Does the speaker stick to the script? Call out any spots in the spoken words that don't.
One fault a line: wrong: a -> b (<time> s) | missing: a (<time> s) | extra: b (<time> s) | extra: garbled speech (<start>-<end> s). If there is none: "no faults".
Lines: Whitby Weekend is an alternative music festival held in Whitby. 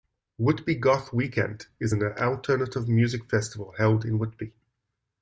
extra: Goth (0.8 s)